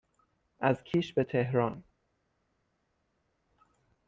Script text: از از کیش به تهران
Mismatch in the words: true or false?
true